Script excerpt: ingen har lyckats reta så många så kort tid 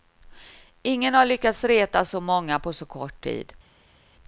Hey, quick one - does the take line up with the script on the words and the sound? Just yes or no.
no